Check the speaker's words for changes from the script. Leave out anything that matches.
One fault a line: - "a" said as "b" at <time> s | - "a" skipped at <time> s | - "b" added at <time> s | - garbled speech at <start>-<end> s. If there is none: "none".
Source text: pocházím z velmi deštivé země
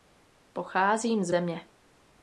- "velmi deštivé" skipped at 1.3 s